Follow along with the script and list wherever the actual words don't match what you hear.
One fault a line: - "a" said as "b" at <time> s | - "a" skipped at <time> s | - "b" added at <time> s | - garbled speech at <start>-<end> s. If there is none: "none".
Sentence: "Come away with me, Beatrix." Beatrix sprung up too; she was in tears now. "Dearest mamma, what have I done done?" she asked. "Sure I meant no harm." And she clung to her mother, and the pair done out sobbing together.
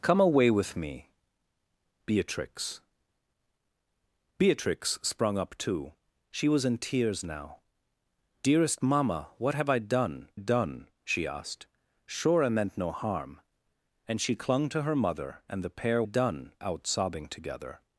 none